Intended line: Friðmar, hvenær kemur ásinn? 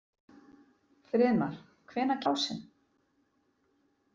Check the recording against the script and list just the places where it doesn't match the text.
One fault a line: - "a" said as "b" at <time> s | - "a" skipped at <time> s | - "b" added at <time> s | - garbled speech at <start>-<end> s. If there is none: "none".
- "kemur" skipped at 2.2 s